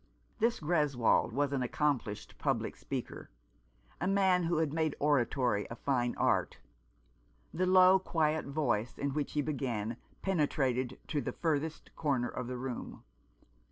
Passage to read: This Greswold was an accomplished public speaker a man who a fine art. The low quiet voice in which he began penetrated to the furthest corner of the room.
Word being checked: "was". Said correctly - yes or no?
yes